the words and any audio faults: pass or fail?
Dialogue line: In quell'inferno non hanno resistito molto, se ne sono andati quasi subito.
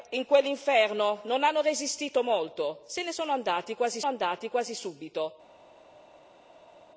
fail